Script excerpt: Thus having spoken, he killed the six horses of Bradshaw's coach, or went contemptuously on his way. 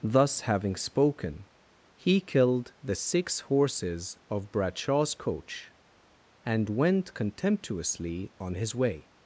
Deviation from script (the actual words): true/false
true